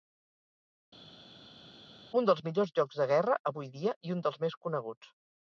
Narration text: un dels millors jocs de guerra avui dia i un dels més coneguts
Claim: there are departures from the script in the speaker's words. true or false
false